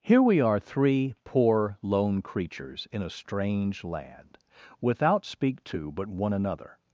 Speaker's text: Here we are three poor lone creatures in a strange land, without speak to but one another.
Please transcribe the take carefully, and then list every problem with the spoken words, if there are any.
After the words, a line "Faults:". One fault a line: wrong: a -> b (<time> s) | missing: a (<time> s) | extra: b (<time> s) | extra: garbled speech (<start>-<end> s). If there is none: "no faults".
Here we are three poor lone creatures in a strange land, without speak to but one another.
Faults:
no faults